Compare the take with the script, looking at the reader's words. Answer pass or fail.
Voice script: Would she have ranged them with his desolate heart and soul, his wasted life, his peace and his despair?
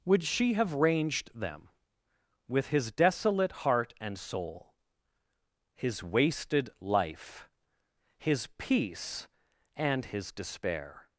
pass